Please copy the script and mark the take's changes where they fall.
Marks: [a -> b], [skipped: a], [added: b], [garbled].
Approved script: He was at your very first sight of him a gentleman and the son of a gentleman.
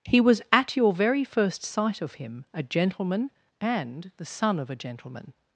He was at your very first sight of him a gentleman and the son of a gentleman.